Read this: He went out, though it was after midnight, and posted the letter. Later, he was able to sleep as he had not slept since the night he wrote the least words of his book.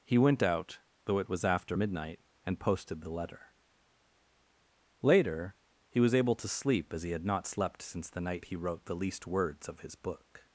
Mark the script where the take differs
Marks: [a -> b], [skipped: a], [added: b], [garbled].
He went out, though it was after midnight, and posted the letter. Later, he was able to sleep as he had not slept since the night he wrote the least words of his book.